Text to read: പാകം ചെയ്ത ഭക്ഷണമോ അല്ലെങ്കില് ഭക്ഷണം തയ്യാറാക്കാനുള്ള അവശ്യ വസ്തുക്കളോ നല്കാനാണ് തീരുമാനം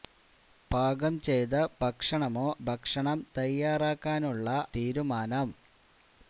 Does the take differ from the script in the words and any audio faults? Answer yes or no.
yes